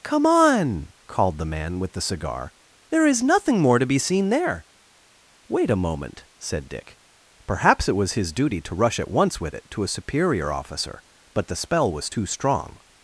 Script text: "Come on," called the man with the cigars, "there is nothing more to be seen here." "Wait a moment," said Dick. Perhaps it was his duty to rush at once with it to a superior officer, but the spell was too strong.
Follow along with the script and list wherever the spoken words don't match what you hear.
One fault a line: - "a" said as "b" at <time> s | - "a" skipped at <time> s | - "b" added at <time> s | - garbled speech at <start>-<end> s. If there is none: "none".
- "cigars" said as "cigar" at 2.0 s
- "here" said as "there" at 4.3 s